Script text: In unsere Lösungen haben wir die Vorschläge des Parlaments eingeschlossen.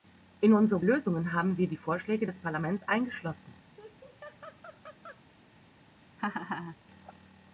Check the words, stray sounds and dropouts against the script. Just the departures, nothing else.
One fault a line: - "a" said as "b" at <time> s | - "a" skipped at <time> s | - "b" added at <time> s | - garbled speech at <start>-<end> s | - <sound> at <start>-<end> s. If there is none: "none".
- laugh at 3.8-5.2 s
- laugh at 6.2-6.8 s